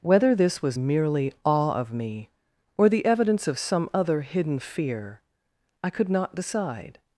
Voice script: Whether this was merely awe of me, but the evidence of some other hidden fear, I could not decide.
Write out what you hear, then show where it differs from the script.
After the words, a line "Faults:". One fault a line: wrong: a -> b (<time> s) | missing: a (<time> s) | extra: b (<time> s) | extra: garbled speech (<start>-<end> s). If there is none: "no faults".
Whether this was merely awe of me, or the evidence of some other hidden fear, I could not decide.
Faults:
wrong: but -> or (2.8 s)